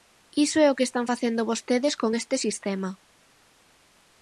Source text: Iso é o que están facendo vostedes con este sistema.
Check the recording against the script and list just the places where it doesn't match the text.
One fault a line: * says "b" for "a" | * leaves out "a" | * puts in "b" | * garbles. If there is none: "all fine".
all fine